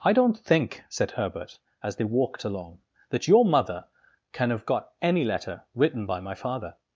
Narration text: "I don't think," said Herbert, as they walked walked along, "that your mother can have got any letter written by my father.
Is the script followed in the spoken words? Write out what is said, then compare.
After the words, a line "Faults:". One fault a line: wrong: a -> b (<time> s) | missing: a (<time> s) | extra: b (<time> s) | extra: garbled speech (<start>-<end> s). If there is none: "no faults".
"I don't think," said Herbert, as they walked along, "that your mother can have got any letter written by my father.
Faults:
missing: walked (2.4 s)